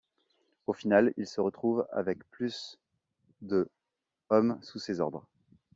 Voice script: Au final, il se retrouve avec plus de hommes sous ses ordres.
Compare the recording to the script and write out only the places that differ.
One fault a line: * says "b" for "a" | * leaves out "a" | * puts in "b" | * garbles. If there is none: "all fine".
all fine